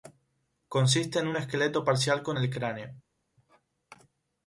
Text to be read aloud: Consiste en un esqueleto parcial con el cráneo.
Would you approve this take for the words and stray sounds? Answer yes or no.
yes